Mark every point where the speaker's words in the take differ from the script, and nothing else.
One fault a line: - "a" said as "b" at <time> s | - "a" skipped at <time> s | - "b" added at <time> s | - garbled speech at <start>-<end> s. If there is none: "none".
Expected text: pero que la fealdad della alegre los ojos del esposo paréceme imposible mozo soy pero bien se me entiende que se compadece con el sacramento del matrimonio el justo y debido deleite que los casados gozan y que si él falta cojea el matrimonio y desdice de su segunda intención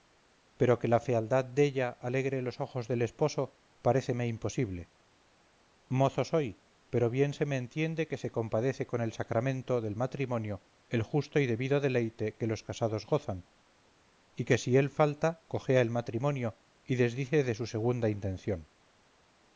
none